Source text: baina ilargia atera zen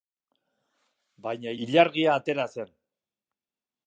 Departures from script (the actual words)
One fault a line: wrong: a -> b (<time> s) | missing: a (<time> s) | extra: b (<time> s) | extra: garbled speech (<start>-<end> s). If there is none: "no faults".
no faults